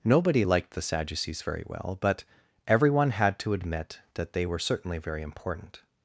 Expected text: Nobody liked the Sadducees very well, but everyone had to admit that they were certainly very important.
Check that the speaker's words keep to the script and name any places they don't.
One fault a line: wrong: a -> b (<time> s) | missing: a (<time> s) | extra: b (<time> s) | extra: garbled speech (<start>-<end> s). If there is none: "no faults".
no faults